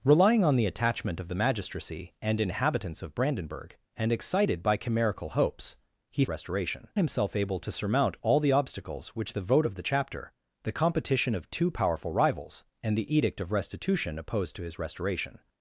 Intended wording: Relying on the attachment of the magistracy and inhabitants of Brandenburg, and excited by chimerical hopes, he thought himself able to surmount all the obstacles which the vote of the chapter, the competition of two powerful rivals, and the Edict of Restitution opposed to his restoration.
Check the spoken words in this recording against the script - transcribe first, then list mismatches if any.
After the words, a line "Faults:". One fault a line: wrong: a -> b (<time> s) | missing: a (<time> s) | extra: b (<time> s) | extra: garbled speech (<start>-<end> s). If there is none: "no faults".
Relying on the attachment of the magistracy and inhabitants of Brandenburg, and excited by chimerical hopes, he restoration himself able to surmount all the obstacles which the vote of the chapter, the competition of two powerful rivals, and the Edict of Restitution opposed to his restoration.
Faults:
wrong: thought -> restoration (6.3 s)